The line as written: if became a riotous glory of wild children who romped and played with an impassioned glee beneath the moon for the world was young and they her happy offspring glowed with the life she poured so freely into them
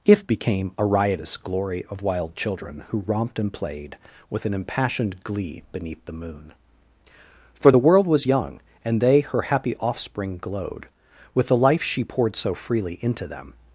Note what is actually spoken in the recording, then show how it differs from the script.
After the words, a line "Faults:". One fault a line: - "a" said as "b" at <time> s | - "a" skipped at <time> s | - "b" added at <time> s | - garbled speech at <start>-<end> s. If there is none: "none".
if became a riotous glory of wild children who romped and played with an impassioned glee beneath the moon for the world was young and they her happy offspring glowed with the life she poured so freely into them
Faults:
none